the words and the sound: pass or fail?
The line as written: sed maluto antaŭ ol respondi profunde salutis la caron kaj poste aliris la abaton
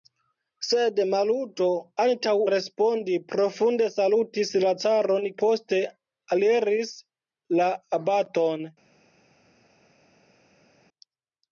fail